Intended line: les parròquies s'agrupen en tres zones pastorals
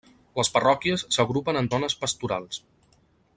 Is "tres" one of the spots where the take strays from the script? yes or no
yes